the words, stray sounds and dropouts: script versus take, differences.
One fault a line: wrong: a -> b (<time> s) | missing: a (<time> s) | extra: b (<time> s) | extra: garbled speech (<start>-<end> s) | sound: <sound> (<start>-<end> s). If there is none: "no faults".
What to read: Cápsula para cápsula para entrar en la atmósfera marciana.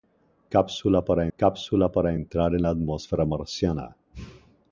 no faults